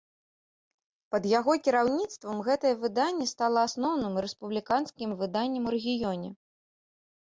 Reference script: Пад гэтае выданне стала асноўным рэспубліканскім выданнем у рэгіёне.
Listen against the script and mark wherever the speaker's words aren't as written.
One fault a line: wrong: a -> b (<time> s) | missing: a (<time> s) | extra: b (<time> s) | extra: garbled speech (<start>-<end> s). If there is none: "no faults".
extra: яго кіраўніцтвам (1.4 s)